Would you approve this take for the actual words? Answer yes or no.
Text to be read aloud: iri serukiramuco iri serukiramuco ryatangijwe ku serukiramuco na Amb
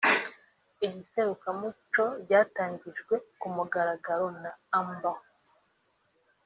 no